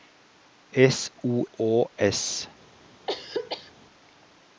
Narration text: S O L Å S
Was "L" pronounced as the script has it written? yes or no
no